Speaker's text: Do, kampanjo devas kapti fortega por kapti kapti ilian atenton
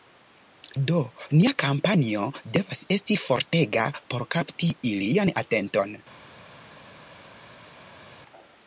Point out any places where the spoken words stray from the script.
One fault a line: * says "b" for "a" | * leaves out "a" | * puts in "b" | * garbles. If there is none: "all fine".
* puts in "nia"
* says "esti" for "kapti"
* leaves out "kapti"